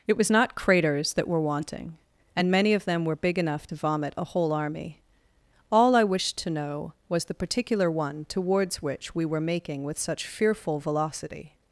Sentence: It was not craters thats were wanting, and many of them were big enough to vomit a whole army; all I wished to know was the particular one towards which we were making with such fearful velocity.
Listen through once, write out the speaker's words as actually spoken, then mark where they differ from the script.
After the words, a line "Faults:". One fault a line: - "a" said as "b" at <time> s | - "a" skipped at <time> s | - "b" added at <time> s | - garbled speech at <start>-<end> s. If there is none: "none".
It was not craters that were wanting, and many of them were big enough to vomit a whole army; all I wished to know was the particular one towards which we were making with such fearful velocity.
Faults:
- "thats" said as "that" at 1.1 s